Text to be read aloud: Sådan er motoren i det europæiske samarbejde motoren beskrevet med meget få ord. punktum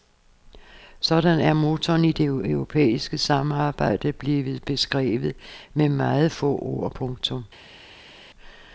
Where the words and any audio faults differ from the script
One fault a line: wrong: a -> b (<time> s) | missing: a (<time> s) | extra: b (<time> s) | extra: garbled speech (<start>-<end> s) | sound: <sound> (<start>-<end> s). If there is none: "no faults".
wrong: motoren -> blevet (4.1 s)